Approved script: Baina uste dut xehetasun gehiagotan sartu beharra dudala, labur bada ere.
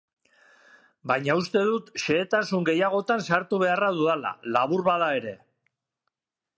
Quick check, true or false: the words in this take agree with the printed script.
true